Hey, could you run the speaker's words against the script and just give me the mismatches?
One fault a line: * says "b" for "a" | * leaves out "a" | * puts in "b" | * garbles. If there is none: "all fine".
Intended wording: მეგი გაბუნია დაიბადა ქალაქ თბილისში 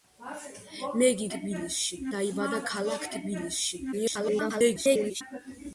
* says "თბილისში" for "გაბუნია"
* garbles